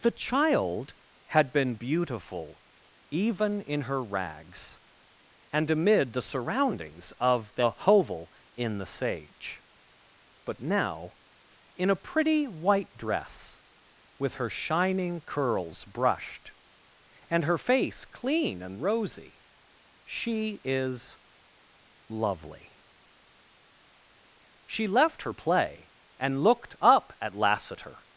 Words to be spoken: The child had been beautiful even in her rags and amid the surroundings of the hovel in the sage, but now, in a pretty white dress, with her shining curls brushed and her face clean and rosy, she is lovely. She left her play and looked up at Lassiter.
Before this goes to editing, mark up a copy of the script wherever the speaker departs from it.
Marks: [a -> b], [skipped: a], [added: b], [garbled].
The child had been beautiful even in her rags and amid the surroundings of the hovel in the sage, but now, in a pretty white dress, with her shining curls brushed and her face clean and rosy, she is lovely. She left her play and looked up at Lassiter.